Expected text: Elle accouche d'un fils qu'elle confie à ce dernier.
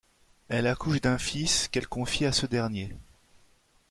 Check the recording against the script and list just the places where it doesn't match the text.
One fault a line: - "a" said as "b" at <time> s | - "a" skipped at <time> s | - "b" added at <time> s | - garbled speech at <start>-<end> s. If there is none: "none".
none